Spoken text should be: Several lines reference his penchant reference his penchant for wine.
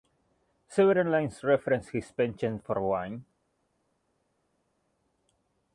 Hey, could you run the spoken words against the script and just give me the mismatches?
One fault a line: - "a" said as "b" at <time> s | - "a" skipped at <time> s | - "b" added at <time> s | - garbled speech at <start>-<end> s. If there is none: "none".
- "reference his penchant" skipped at 2.6 s